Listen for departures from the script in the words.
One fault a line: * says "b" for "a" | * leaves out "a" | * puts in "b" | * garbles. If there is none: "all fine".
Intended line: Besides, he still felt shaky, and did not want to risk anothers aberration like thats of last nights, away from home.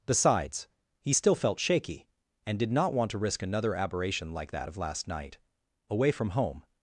* says "another" for "anothers"
* says "that" for "thats"
* says "night" for "nights"